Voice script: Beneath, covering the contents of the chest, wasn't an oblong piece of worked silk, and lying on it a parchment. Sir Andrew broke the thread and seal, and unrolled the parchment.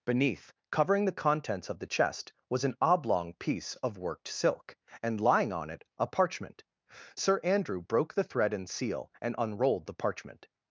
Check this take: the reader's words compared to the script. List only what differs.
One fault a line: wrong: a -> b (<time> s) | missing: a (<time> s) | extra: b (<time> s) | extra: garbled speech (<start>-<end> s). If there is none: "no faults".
wrong: wasn't -> was (2.5 s)